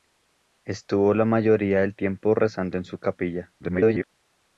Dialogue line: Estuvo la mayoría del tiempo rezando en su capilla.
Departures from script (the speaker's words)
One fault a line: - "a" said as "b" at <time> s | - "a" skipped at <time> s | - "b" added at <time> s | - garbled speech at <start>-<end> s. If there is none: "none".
- garbled speech at 3.6-4.1 s